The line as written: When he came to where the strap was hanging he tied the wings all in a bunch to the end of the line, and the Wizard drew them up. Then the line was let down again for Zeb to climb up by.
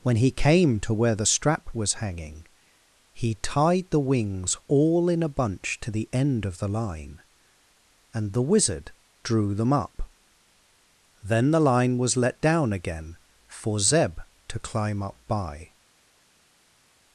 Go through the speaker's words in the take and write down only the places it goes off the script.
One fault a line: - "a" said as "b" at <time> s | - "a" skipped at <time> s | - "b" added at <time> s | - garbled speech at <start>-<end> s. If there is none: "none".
none